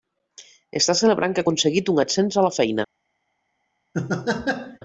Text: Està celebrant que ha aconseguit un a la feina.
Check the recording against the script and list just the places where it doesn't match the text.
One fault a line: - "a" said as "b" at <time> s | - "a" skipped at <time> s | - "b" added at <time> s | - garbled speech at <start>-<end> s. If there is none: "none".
- "ascens" added at 2.0 s